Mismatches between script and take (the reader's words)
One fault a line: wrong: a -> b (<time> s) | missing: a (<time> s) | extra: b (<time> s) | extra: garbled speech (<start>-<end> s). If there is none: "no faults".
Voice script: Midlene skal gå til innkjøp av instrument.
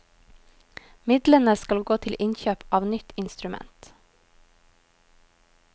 extra: nytt (2.9 s)